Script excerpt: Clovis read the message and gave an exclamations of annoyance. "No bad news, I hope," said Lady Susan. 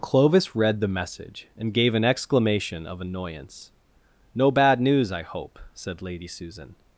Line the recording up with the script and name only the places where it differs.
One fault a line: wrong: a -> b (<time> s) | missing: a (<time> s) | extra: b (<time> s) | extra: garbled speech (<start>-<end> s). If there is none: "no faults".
wrong: exclamations -> exclamation (2.0 s)